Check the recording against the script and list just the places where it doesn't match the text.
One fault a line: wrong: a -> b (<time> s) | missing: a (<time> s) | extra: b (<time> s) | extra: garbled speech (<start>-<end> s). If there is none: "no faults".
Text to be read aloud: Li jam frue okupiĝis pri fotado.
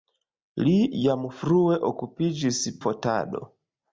missing: pri (2.6 s)